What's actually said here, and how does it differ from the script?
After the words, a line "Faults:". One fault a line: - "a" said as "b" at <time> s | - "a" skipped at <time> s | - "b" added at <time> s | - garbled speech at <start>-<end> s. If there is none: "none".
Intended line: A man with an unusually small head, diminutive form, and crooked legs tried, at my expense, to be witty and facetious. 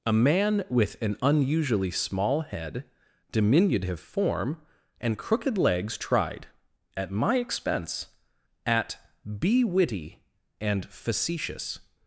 A man with an unusually small head, diminutive form, and crooked legs tried, at my expense, at be witty and facetious.
Faults:
- "to" said as "at" at 8.7 s